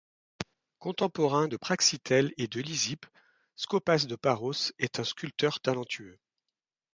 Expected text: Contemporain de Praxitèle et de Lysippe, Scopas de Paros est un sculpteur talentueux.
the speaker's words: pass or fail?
pass